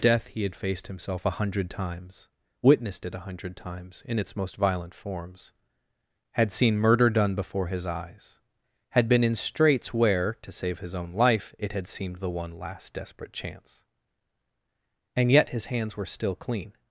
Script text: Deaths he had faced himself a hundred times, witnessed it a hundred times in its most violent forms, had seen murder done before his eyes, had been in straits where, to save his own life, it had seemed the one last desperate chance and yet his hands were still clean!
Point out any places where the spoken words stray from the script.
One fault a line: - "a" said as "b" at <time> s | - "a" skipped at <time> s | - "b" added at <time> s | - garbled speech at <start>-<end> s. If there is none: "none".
- "Deaths" said as "Death" at 0.0 s